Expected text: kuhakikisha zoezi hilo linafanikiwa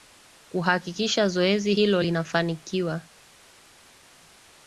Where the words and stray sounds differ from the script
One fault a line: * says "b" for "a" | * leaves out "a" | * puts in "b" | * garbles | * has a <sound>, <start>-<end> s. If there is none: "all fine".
all fine